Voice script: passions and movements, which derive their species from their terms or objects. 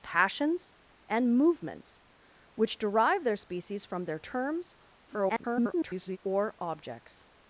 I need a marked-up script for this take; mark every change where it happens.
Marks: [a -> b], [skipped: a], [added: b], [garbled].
passions and movements, which derive their species from their terms [garbled] or objects.